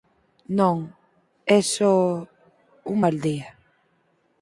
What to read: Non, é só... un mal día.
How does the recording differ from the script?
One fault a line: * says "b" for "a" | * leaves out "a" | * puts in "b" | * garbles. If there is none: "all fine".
all fine